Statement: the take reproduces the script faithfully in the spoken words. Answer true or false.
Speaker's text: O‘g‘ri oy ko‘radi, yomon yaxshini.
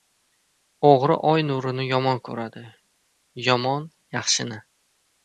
false